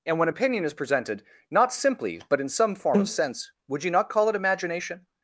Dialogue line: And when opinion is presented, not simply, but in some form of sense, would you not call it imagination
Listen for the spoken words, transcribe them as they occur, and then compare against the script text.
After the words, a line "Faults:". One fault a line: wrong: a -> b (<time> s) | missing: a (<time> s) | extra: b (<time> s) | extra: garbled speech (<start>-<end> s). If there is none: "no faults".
And when opinion is presented, not simply, but in some form of sense, would you not call it imagination
Faults:
no faults